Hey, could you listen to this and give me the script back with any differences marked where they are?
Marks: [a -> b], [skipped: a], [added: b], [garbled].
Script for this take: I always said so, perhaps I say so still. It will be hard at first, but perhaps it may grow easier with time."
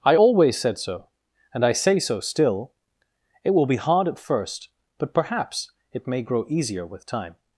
I always said so, [perhaps -> and] I say so still. It will be hard at first, but perhaps it may grow easier with time."